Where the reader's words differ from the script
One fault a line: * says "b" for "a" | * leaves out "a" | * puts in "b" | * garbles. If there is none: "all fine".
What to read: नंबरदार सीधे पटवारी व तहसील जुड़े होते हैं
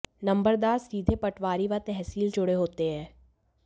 all fine